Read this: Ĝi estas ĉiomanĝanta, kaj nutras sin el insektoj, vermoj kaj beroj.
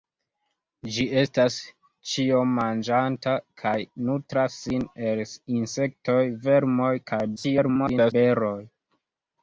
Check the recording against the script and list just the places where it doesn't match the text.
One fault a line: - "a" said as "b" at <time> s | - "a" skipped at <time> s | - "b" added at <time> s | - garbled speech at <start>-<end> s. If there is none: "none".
- garbled speech at 7.4-8.1 s